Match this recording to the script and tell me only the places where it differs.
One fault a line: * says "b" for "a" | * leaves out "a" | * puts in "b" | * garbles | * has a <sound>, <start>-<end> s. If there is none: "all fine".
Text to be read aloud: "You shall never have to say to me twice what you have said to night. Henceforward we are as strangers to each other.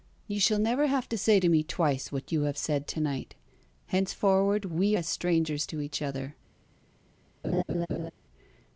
* leaves out "are"
* has a laugh, 7.4-8.1 s